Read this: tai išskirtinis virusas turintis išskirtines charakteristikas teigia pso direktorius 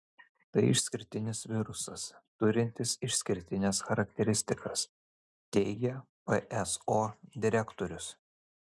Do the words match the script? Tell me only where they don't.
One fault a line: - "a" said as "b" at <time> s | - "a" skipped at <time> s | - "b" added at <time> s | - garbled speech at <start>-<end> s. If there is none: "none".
none